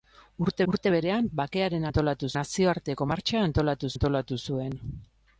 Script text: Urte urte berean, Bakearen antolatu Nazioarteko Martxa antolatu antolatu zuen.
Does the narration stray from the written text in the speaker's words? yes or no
no